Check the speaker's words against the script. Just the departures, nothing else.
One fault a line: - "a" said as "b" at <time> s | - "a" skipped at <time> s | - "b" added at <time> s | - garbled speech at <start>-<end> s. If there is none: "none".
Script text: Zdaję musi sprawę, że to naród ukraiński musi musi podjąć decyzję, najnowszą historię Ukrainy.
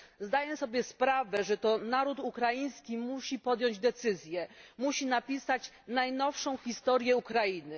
- "musi" said as "sobie" at 0.5 s
- "musi" skipped at 3.4 s
- "musi napisać" added at 4.8 s